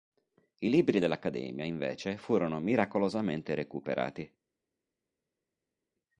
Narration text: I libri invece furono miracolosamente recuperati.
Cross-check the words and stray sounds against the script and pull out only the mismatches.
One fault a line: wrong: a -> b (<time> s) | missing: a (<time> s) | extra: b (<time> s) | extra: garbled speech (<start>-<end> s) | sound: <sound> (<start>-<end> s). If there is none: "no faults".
extra: dell'accademia (1.0 s)